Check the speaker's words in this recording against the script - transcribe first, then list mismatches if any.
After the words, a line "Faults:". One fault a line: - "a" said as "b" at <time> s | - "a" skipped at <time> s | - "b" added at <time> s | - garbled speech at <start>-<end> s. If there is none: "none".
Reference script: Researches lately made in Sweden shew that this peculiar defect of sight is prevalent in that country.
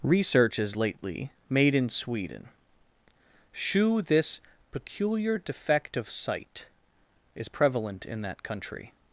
Researches lately made in Sweden shew this peculiar defect of sight is prevalent in that country.
Faults:
- "that" skipped at 4.0 s